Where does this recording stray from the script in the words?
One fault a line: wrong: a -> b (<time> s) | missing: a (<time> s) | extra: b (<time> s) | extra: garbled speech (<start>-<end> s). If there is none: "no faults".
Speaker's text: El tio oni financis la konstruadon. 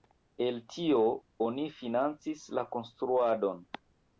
no faults